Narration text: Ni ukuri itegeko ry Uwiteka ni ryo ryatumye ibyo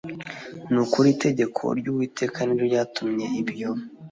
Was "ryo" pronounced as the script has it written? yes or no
yes